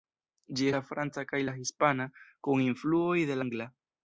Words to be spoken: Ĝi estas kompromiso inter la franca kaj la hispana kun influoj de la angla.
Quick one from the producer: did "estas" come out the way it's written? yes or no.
no